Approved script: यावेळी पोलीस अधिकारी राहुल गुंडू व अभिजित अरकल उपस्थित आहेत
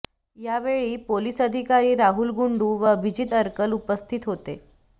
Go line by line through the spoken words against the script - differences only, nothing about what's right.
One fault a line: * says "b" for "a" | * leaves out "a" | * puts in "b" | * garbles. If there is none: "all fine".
* says "होते" for "आहेत"